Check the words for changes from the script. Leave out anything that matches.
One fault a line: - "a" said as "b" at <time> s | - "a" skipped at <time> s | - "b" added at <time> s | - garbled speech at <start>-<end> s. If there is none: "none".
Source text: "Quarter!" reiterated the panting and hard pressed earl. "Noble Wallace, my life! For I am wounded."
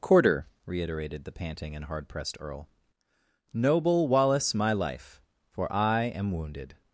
none